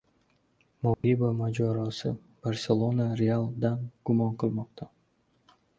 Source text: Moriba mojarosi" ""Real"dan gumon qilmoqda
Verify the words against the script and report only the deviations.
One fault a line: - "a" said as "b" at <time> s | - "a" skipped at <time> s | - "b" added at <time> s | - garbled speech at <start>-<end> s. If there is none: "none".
- "Barselona" added at 2.4 s